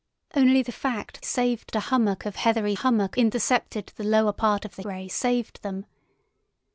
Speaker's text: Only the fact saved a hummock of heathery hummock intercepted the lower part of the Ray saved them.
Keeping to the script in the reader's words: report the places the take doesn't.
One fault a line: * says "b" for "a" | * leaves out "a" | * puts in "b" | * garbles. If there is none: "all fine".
all fine